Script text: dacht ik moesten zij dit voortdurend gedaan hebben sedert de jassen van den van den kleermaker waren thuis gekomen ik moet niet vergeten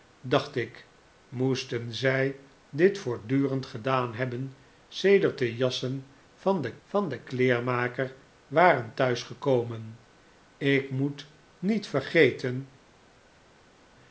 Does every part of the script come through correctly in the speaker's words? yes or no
yes